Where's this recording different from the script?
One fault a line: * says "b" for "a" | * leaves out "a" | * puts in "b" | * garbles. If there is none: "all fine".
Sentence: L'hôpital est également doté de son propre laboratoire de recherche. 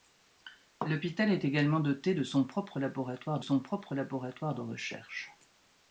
* puts in "son propre laboratoire"